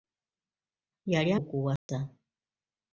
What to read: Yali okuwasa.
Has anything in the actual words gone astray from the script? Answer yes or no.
no